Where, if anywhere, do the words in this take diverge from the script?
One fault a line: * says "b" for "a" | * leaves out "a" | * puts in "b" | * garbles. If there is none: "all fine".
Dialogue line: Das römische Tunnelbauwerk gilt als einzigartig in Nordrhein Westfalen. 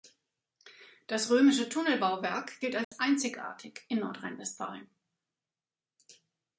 all fine